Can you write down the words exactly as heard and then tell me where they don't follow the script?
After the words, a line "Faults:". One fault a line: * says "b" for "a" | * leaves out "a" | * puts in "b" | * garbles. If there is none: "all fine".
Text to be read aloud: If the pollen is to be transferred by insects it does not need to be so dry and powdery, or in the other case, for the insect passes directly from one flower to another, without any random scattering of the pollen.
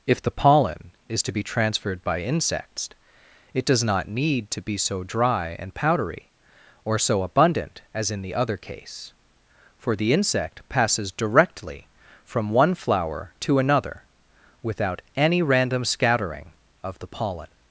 If the pollen is to be transferred by insects it does not need to be so dry and powdery, or so abundant as in the other case, for the insect passes directly from one flower to another, without any random scattering of the pollen.
Faults:
* puts in "so abundant as"